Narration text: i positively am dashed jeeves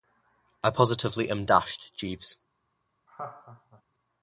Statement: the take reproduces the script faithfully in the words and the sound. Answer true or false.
false